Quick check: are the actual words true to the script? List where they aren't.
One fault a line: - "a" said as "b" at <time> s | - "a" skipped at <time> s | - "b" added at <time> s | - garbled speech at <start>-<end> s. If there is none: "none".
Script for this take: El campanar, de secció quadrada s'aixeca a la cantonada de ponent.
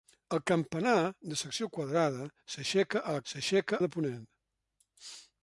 - "cantonada" said as "s'aixeca" at 3.3 s